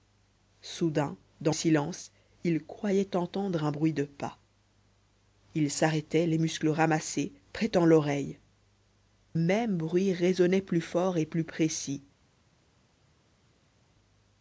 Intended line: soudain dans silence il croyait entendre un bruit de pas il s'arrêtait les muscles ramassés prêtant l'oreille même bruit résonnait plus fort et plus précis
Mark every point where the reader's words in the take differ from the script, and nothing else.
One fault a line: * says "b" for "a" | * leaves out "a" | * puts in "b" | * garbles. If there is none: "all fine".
all fine